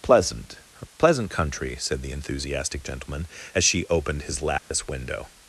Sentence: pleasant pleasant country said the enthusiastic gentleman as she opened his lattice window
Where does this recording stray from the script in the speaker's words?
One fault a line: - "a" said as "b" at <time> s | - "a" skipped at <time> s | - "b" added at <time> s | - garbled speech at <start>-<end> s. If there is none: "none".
none